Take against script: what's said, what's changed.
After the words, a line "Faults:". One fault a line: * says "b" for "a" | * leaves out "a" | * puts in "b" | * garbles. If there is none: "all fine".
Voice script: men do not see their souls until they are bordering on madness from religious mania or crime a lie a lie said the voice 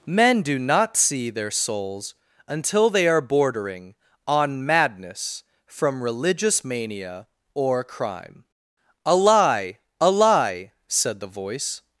men do not see their souls until they are bordering on madness from religious mania or crime a lie a lie said the voice
Faults:
all fine